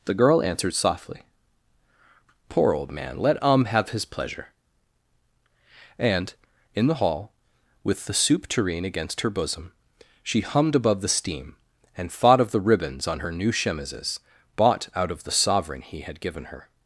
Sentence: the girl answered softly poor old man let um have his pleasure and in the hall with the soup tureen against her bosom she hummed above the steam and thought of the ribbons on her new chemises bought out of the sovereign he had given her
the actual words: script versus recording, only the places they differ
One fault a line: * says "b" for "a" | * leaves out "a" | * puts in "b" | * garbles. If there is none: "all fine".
all fine